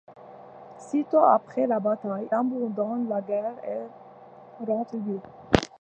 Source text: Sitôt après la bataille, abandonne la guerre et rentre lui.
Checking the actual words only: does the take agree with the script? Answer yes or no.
yes